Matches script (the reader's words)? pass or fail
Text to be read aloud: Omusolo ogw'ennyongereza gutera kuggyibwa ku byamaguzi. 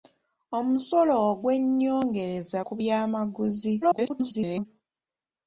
fail